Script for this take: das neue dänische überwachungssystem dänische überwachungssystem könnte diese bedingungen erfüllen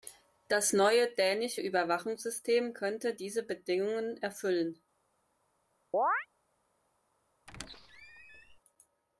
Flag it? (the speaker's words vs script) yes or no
yes